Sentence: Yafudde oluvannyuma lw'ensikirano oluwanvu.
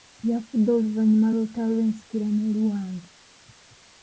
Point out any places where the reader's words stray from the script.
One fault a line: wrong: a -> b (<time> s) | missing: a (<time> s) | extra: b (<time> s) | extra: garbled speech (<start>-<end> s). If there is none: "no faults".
extra: lw'olutalo (1.3 s)